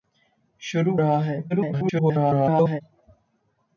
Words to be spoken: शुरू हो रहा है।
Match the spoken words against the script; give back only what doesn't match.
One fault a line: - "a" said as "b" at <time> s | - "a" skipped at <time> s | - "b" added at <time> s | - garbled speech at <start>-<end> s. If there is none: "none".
- "हो" skipped at 1.0 s
- garbled speech at 1.5-2.8 s